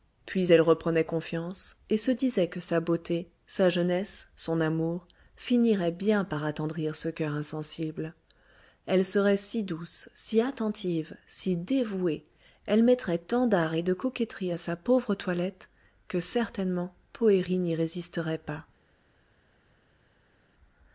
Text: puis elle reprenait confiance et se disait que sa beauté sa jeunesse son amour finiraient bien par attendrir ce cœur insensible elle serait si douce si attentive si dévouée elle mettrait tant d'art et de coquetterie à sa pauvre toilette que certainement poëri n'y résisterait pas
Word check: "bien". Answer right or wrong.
right